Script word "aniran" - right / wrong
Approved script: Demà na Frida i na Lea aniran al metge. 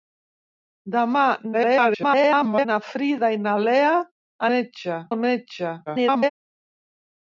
wrong